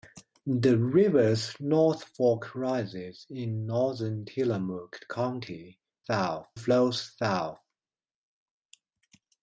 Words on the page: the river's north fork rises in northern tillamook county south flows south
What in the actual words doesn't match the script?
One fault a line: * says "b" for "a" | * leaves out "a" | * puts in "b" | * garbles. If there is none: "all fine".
all fine